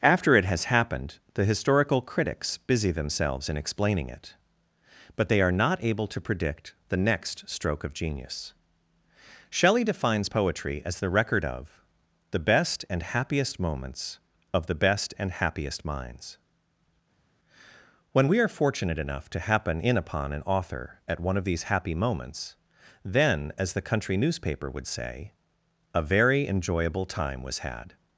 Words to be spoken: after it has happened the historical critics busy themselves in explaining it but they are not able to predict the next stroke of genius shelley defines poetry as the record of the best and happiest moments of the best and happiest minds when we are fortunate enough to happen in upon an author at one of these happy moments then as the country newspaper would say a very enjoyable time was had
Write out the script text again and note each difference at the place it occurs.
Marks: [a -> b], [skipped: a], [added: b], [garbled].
after it has happened the historical critics busy themselves in explaining it but they are not able to predict the next stroke of genius shelley defines poetry as the record of the best and happiest moments of the best and happiest minds when we are fortunate enough to happen in upon an author at one of these happy moments then as the country newspaper would say a very enjoyable time was had